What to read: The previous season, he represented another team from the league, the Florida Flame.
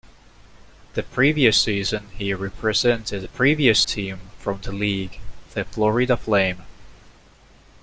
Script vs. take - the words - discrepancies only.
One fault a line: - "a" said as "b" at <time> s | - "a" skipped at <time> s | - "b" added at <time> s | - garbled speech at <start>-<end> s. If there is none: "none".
- "another" said as "previous" at 3.3 s